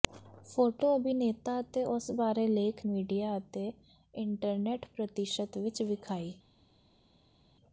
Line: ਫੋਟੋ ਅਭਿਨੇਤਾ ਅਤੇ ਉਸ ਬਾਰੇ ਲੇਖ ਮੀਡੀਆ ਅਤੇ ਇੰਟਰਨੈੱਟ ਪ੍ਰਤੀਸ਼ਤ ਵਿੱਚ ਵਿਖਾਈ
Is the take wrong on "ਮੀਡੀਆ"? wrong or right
right